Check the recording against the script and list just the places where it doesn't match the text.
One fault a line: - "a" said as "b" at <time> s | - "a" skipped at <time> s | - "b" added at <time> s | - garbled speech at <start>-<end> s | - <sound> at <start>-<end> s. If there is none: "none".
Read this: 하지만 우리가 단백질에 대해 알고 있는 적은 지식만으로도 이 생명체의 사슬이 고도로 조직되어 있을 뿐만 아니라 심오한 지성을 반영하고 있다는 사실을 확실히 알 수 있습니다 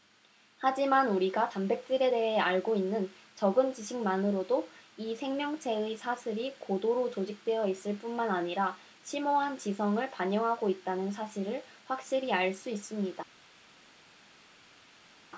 none